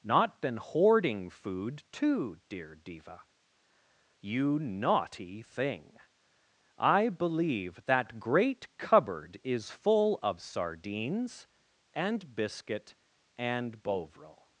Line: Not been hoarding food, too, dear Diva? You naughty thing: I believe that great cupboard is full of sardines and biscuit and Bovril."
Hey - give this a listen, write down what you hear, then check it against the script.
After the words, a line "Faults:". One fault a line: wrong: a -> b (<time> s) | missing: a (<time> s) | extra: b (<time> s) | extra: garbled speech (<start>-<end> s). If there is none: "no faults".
Not been hoarding food, too, dear Diva? You naughty thing: I believe that great cupboard is full of sardines and biscuit and Bovril."
Faults:
no faults